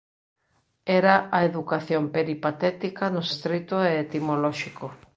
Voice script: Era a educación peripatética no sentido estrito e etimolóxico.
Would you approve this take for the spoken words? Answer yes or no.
no